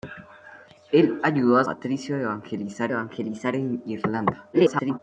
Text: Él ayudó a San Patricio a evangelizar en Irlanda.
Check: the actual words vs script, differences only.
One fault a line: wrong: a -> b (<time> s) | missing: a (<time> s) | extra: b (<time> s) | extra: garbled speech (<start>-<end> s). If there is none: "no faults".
missing: San (1.6 s)
extra: evangelizar (2.9 s)
extra: garbled speech (4.5-5.0 s)